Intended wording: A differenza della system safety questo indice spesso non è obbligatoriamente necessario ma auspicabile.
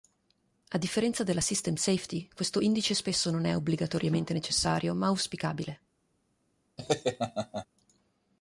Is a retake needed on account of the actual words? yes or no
no